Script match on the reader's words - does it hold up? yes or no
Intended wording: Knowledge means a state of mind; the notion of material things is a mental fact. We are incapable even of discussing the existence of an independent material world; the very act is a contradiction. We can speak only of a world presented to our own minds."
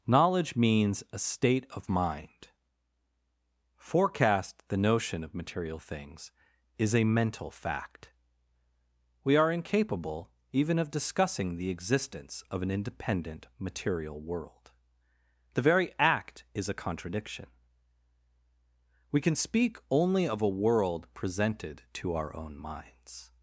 no